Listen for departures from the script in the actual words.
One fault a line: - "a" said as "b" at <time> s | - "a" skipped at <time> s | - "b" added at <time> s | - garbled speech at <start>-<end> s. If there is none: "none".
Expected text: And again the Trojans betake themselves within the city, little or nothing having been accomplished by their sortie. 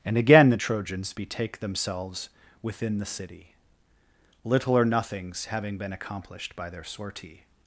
- "nothing" said as "nothings" at 4.8 s